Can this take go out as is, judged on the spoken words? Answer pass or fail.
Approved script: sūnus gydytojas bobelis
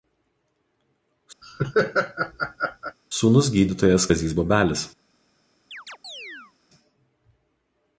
fail